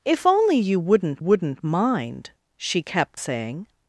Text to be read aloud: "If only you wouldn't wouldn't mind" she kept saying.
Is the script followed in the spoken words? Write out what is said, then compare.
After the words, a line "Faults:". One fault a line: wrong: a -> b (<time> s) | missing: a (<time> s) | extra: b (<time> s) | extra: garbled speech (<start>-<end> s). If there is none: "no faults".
"If only you wouldn't wouldn't mind" she kept saying.
Faults:
no faults